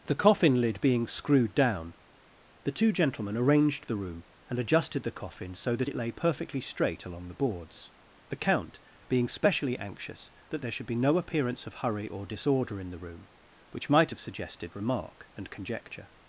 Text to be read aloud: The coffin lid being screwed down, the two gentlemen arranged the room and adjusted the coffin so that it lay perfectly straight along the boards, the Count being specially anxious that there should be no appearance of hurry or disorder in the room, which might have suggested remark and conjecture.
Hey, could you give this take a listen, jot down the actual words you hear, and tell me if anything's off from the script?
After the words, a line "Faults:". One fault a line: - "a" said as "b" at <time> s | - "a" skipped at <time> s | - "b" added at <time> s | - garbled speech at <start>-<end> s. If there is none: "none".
The coffin lid being screwed down, the two gentlemen arranged the room and adjusted the coffin so that it lay perfectly straight along the boards, the Count being specially anxious that there should be no appearance of hurry or disorder in the room, which might have suggested remark and conjecture.
Faults:
none